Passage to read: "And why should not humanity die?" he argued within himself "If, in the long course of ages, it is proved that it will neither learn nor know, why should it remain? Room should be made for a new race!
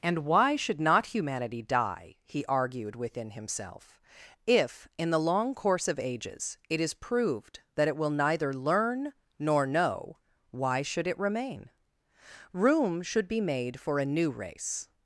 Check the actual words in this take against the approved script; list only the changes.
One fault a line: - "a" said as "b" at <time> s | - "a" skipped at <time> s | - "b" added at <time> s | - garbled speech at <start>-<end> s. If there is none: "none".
none